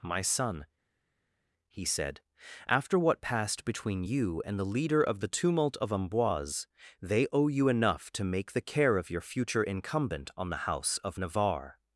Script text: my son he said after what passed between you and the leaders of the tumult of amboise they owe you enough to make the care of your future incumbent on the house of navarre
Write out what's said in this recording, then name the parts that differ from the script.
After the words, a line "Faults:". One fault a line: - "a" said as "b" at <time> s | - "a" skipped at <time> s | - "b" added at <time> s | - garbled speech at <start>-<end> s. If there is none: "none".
my son he said after what passed between you and the leader of the tumult of amboise they owe you enough to make the care of your future incumbent on the house of navarre
Faults:
- "leaders" said as "leader" at 4.7 s